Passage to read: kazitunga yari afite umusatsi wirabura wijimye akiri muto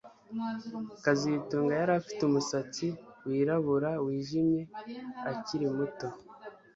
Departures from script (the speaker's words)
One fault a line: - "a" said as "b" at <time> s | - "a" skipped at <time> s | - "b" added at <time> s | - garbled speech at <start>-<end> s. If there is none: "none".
none